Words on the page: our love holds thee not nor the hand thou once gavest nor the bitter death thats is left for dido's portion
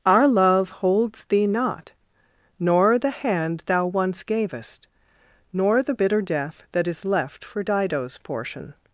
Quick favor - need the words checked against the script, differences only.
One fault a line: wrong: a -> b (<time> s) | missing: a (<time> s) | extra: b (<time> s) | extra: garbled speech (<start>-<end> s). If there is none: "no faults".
wrong: thats -> that (6.7 s)